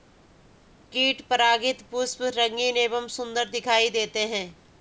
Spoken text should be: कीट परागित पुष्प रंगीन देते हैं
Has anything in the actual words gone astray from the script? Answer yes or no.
yes